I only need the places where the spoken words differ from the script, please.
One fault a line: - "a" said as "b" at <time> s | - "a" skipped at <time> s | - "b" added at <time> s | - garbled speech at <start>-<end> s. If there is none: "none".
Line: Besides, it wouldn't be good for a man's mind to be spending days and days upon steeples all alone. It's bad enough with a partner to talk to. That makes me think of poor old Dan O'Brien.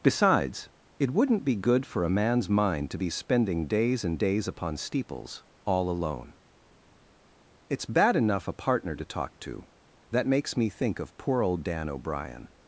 - "with" skipped at 8.5 s